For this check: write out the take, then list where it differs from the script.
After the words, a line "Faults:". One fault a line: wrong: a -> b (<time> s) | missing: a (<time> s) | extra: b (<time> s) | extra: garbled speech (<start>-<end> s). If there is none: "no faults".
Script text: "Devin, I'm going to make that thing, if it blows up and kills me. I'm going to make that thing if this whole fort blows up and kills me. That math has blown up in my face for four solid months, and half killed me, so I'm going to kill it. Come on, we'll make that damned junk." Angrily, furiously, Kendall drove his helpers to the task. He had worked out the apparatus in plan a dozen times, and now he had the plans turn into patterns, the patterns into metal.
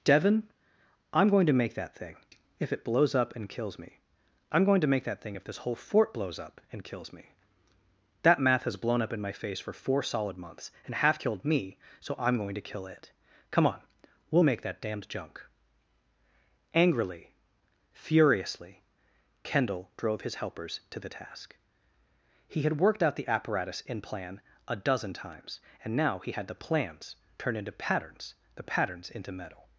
"Devin, I'm going to make that thing, if it blows up and kills me. I'm going to make that thing if this whole fort blows up and kills me. That math has blown up in my face for four solid months, and half killed me, so I'm going to kill it. Come on, we'll make that damned junk." Angrily, furiously, Kendall drove his helpers to the task. He had worked out the apparatus in plan a dozen times, and now he had the plans turn into patterns, the patterns into metal.
Faults:
no faults